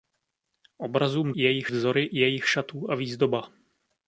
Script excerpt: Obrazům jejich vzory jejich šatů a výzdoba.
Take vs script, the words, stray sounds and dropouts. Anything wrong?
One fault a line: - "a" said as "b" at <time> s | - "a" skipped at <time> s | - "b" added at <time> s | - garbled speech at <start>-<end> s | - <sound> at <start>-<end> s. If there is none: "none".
none